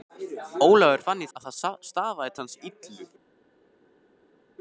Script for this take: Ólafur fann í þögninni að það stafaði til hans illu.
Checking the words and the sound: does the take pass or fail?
fail